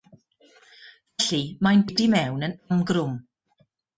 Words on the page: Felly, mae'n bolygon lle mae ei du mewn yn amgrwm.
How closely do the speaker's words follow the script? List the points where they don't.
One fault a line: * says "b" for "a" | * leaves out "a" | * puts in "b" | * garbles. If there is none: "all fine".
* leaves out "bolygon lle mae"